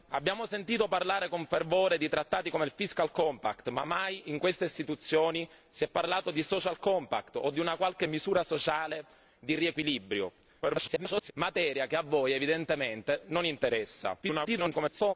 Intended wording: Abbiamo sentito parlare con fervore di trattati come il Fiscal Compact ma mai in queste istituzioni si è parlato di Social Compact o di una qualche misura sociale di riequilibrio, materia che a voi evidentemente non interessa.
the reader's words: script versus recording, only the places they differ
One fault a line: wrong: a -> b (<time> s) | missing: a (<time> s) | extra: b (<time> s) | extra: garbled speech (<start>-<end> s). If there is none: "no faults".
extra: garbled speech (10.6-11.3 s)
extra: garbled speech (14.2-15.1 s)